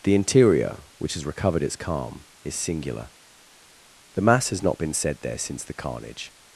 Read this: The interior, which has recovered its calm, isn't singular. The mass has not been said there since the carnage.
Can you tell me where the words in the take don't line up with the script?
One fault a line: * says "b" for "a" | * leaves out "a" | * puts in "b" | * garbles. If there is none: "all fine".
* says "is" for "isn't"